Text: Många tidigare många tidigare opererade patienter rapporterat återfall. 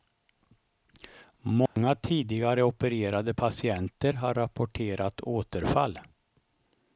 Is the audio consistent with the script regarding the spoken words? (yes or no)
no